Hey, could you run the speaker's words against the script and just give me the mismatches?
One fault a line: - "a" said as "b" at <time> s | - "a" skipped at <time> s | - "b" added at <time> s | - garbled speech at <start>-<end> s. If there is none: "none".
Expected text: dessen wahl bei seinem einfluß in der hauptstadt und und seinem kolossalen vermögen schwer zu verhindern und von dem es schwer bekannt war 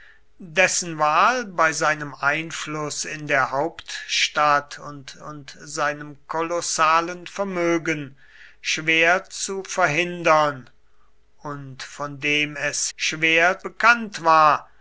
none